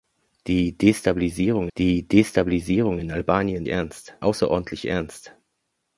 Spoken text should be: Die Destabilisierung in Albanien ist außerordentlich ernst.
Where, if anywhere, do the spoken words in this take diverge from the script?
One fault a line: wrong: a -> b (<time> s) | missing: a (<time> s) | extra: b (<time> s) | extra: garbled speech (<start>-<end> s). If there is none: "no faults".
extra: die Destabilisierung (1.8 s)
wrong: ist -> ernst (3.7 s)